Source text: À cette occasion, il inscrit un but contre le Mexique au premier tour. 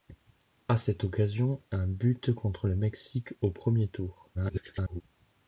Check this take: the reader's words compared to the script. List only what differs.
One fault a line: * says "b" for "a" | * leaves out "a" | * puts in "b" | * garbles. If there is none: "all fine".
* leaves out "il inscrit"
* garbles